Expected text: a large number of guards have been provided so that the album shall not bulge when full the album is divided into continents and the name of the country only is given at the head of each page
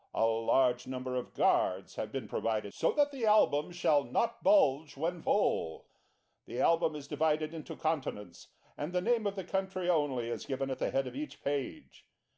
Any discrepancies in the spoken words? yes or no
no